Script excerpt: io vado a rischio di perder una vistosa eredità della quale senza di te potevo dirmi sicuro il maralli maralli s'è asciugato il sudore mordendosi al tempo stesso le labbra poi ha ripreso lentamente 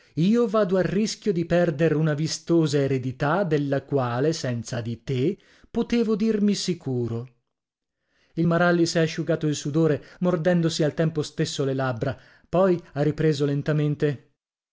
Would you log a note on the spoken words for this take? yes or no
yes